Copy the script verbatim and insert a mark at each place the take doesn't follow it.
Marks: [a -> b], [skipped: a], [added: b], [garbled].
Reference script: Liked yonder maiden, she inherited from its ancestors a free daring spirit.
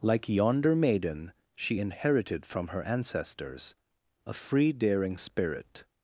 [Liked -> Like] yonder maiden, she inherited from [its -> her] ancestors a free daring spirit.